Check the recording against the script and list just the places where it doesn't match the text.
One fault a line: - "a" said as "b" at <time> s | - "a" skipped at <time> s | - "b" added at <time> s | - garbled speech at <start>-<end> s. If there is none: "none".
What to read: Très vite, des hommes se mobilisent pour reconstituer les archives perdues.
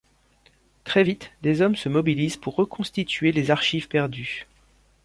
none